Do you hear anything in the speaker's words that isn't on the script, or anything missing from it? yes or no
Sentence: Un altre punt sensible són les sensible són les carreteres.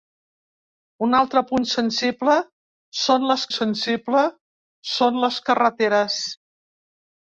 no